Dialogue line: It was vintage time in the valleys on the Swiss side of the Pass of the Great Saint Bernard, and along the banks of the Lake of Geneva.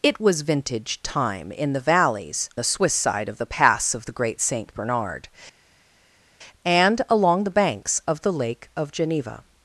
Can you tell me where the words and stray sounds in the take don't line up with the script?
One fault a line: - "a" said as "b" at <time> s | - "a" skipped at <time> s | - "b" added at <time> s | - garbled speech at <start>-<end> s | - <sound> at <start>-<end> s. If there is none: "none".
- "on" skipped at 2.5 s